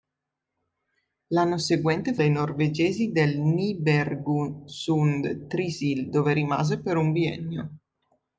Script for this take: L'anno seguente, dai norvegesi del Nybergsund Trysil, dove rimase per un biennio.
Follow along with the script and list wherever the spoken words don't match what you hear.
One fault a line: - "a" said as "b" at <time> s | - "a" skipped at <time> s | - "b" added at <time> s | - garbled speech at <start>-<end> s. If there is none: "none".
none